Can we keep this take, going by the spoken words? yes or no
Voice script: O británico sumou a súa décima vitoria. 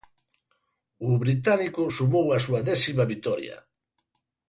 yes